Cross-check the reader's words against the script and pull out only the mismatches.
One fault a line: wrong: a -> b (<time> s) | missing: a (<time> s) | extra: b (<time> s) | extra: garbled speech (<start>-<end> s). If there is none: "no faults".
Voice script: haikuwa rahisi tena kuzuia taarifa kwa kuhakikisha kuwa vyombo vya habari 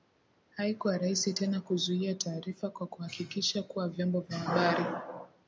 no faults